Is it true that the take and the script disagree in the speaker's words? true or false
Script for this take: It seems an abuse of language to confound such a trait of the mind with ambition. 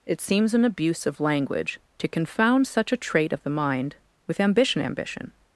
true